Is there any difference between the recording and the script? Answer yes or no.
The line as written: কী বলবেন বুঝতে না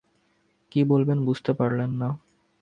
yes